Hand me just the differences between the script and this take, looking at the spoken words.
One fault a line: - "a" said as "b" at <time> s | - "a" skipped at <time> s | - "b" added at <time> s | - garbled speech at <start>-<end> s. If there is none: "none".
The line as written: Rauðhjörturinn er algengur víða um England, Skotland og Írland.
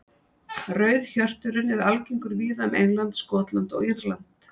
none